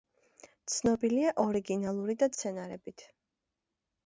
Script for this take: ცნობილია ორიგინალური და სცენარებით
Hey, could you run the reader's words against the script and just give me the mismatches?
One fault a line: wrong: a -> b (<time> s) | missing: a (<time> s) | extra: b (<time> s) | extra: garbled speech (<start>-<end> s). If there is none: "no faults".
no faults